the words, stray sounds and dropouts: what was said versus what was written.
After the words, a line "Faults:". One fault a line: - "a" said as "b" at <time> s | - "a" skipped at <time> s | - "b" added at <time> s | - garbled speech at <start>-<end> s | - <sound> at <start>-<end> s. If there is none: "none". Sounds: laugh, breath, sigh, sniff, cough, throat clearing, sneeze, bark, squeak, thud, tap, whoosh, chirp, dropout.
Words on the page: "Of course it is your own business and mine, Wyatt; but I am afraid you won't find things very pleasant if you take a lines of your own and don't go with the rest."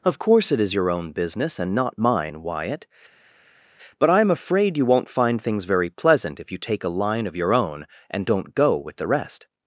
"Of course it is your own business and not mine, Wyatt; but I am afraid you won't find things very pleasant if you take a line of your own and don't go with the rest."
Faults:
- "not" added at 1.8 s
- "lines" said as "line" at 7.0 s